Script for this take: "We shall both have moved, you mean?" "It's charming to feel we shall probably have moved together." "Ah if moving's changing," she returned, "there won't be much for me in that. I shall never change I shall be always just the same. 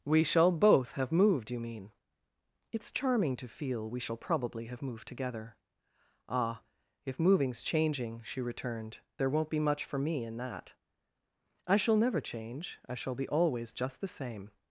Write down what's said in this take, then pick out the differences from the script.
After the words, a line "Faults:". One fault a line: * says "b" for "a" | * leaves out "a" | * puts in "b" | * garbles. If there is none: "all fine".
"We shall both have moved, you mean?" "It's charming to feel we shall probably have moved together." "Ah if moving's changing," she returned, "there won't be much for me in that. I shall never change I shall be always just the same.
Faults:
all fine